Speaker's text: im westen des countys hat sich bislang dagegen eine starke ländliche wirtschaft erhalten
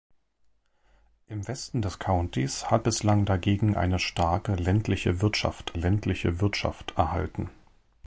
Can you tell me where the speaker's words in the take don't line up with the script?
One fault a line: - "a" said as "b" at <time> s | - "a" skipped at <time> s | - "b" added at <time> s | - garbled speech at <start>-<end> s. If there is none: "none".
- "sich" skipped at 2.9 s
- "ländliche wirtschaft" added at 5.7 s